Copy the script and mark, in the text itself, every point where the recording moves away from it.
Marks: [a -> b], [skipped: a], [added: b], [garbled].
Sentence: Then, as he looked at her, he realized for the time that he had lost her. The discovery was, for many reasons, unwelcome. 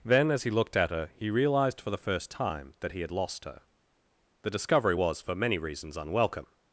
Then, as he looked at her, he realized for the [added: first] time that he had lost her. The discovery was, for many reasons, unwelcome.